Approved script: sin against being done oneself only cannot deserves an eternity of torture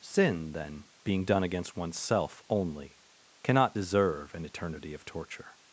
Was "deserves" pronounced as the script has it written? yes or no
no